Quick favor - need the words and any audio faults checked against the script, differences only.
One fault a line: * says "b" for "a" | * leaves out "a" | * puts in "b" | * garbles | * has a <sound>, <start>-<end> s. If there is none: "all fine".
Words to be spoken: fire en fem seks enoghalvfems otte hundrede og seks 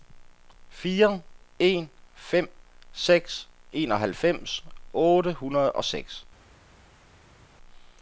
all fine